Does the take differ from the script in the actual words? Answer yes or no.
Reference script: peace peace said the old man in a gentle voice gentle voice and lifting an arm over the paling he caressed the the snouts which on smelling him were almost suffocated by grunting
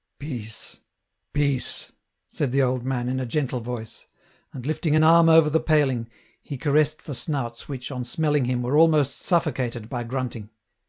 yes